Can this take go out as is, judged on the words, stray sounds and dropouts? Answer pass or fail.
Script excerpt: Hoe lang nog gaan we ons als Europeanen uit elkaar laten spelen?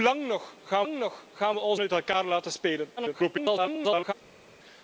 fail